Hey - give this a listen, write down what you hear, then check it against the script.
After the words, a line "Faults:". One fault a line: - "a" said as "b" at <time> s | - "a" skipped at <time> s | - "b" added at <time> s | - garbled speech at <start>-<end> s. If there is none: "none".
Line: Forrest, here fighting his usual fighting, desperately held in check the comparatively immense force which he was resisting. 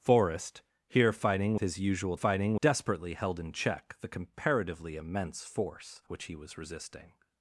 Forrest, here fighting his usual fighting, desperately held in check the comparatively immense force which he was resisting.
Faults:
none